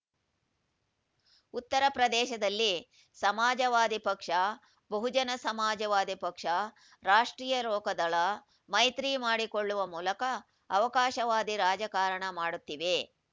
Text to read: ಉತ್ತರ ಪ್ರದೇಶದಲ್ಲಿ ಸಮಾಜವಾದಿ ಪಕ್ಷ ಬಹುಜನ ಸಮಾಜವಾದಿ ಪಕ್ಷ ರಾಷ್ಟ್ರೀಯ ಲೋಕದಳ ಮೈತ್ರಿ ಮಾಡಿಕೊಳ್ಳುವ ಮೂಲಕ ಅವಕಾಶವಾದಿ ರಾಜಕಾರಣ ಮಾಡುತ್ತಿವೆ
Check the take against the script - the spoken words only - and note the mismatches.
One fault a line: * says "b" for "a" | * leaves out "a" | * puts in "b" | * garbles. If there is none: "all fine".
all fine